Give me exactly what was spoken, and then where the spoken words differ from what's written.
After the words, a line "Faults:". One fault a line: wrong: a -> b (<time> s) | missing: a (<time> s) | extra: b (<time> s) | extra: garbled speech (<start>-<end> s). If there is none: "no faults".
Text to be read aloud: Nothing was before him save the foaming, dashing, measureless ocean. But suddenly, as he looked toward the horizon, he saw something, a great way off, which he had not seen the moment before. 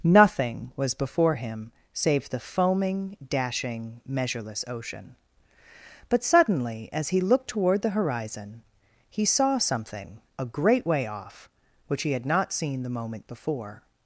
Nothing was before him save the foaming, dashing, measureless ocean. But suddenly, as he looked toward the horizon, he saw something, a great way off, which he had not seen the moment before.
Faults:
no faults